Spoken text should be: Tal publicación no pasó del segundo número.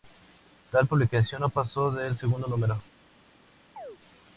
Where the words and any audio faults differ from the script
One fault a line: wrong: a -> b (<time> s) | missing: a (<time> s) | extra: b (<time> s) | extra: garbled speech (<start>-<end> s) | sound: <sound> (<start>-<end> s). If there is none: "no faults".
sound: chirp (3.8-4.0 s)